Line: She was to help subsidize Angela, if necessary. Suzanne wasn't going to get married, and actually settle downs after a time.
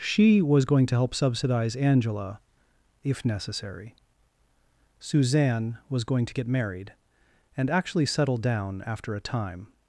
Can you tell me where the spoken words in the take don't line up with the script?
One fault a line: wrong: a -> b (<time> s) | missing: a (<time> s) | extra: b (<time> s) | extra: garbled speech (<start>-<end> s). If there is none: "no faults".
extra: going (0.7 s)
wrong: wasn't -> was (5.9 s)
wrong: downs -> down (8.4 s)